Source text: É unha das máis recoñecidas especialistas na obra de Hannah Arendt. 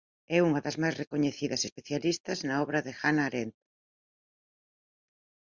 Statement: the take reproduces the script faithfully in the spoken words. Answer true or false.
true